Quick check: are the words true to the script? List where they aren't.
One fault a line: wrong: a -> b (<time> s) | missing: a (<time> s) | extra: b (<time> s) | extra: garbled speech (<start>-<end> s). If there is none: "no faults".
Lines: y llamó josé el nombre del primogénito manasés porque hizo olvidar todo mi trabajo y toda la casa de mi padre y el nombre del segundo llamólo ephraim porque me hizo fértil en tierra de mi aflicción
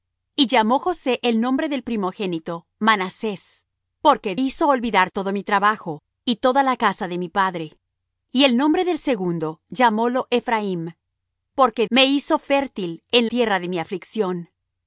no faults